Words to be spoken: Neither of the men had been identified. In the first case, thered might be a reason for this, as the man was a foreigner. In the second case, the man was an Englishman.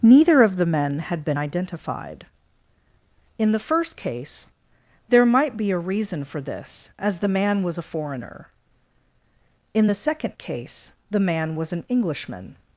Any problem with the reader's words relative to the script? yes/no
yes